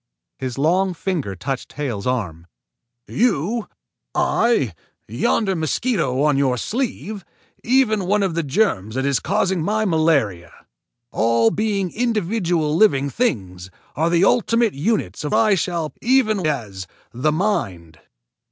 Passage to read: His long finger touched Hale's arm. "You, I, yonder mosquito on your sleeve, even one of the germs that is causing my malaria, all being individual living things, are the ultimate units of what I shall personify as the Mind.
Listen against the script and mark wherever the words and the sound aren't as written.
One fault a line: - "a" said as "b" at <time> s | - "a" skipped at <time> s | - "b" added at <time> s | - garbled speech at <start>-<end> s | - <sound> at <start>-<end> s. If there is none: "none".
- "what" skipped at 15.3 s
- "personify" said as "even" at 16.0 s